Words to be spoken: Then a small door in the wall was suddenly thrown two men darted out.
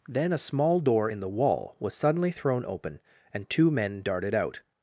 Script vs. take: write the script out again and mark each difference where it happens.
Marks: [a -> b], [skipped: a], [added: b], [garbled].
Then a small door in the wall was suddenly thrown [added: open and] two men darted out.